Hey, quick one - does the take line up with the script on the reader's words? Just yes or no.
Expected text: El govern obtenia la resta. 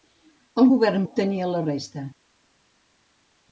yes